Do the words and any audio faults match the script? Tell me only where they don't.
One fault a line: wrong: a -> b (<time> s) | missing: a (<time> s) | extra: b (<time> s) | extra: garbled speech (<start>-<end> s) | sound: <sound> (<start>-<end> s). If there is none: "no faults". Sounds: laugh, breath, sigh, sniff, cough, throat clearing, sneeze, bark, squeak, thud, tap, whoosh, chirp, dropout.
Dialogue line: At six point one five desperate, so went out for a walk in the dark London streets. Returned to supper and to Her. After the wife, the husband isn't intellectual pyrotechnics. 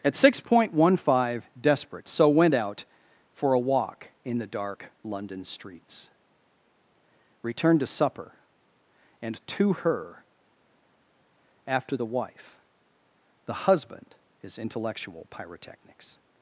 wrong: isn't -> is (14.4 s)